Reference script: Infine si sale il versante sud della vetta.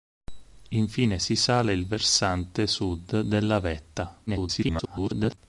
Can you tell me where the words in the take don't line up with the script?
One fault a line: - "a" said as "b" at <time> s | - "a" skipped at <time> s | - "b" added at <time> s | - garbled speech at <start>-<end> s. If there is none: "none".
- garbled speech at 4.3-5.4 s